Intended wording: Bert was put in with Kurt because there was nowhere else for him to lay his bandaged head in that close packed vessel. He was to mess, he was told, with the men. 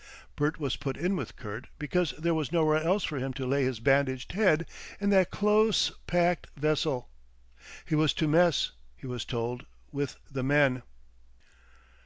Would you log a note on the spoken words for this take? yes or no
no